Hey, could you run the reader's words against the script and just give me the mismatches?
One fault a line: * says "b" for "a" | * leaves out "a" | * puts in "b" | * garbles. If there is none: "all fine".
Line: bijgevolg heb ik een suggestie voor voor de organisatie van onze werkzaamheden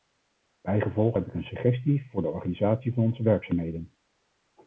* leaves out "voor"